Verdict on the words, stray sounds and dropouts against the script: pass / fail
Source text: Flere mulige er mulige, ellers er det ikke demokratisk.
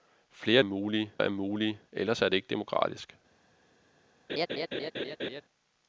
fail